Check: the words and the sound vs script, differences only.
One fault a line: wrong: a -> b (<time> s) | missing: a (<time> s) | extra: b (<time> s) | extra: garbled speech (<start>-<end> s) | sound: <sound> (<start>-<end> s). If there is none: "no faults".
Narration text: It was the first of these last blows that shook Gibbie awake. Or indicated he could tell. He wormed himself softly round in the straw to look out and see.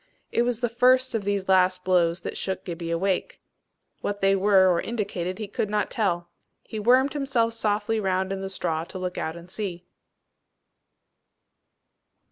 extra: What they were (4.0 s)
extra: not (5.7 s)